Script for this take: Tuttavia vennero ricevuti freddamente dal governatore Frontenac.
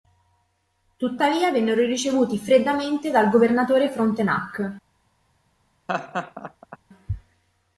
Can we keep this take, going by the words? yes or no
yes